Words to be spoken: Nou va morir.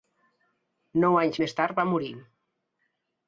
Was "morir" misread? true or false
false